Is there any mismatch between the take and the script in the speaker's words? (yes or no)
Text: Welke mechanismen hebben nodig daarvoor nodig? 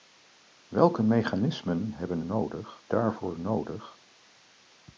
no